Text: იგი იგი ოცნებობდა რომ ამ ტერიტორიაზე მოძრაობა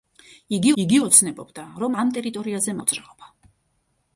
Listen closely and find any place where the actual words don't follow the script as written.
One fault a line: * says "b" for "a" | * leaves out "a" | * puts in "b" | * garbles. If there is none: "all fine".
all fine